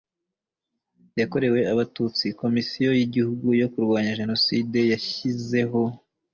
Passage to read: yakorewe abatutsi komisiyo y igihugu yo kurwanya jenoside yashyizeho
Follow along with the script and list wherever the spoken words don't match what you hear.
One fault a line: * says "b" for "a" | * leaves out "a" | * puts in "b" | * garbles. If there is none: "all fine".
all fine